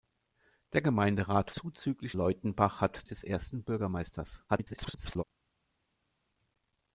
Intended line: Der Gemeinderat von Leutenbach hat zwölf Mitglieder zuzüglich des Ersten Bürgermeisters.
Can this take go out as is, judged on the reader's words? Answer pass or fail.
fail